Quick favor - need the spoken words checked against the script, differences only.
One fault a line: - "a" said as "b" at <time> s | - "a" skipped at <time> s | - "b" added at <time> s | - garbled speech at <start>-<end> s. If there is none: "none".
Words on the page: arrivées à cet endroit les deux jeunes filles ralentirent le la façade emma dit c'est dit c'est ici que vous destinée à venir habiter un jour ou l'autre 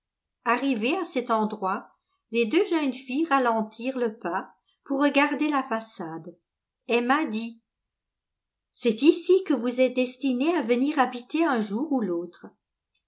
- "pas pour regarder" added at 4.2 s
- "dit c'est" skipped at 9.0 s
- "êtes" added at 9.8 s